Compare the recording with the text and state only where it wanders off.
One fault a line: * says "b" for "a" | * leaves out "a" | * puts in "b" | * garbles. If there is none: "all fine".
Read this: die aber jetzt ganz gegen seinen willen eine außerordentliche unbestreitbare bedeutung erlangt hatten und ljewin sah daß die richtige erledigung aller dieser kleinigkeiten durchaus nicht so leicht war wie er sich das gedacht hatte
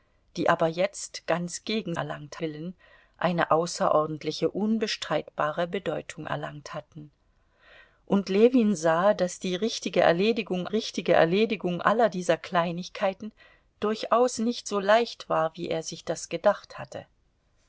* says "erlangt" for "seinen"
* puts in "richtige erledigung"